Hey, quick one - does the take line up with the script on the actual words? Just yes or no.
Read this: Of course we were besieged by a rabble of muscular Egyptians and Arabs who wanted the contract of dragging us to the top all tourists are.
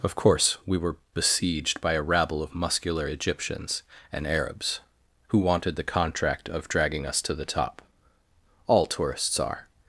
yes